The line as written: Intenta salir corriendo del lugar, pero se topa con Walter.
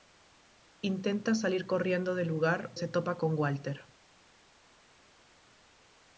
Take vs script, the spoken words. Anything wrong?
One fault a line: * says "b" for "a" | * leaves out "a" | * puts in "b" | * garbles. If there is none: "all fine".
* leaves out "pero"